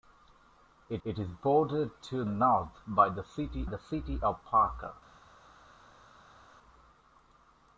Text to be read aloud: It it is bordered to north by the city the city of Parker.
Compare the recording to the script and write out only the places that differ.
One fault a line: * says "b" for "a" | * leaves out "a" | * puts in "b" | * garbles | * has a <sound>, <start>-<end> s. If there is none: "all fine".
all fine